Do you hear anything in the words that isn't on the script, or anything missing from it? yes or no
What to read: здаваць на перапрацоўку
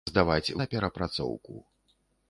no